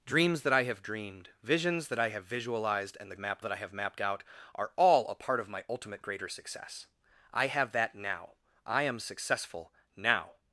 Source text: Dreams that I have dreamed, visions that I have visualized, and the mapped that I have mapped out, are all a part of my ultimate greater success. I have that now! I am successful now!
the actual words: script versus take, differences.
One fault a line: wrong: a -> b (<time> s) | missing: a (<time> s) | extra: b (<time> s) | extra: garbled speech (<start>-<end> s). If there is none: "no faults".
no faults